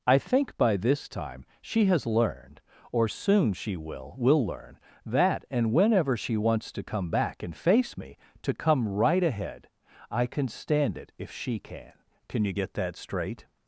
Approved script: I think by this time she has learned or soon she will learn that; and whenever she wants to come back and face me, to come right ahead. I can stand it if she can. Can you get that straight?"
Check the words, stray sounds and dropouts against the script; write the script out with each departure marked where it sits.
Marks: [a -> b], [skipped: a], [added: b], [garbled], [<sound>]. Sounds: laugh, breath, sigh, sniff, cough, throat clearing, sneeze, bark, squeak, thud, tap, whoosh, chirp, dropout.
I think by this time she has learned or soon she will [added: will] learn that; and whenever she wants to come back and face me, to come right ahead. I can stand it if she can. Can you get that straight?"